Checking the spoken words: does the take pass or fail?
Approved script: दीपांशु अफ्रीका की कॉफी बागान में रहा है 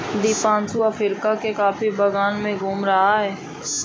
fail